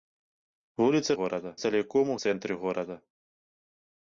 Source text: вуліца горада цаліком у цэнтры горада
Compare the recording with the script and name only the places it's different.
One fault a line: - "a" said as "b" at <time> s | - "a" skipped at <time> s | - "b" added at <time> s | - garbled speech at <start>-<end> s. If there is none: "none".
none